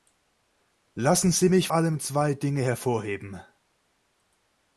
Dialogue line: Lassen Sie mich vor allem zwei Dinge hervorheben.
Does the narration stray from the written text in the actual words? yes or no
yes